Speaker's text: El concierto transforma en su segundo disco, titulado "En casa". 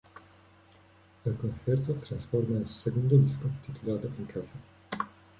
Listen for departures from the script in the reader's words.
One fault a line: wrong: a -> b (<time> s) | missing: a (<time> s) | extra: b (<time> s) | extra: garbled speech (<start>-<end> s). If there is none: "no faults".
no faults